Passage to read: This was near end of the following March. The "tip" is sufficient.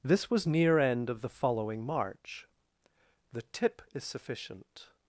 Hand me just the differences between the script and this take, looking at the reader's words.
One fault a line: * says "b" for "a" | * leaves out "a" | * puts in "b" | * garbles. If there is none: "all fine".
all fine